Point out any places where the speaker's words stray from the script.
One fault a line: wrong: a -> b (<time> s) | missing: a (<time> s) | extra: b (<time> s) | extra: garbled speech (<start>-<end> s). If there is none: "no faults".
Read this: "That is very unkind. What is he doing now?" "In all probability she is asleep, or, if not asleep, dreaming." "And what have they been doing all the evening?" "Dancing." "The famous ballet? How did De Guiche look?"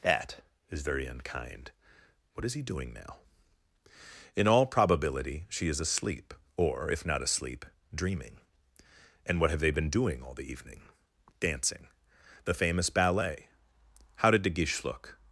no faults